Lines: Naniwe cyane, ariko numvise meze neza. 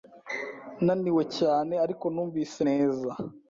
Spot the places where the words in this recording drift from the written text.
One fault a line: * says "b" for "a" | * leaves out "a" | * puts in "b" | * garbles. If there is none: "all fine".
* leaves out "meze"